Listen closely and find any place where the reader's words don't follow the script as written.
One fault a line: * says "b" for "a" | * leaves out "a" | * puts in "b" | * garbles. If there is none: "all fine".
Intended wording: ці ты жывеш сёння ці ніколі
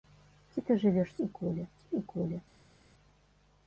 * says "ніколі" for "сёння"